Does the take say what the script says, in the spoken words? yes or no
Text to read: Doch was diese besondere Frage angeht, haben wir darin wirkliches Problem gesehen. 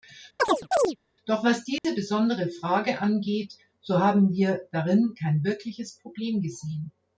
no